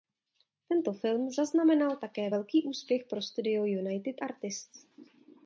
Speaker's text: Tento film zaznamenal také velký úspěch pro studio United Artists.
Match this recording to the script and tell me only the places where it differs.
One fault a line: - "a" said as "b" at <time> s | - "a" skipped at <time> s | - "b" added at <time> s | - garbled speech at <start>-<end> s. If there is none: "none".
none